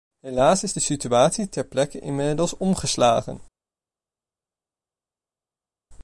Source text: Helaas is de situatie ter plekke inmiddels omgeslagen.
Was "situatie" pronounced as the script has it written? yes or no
yes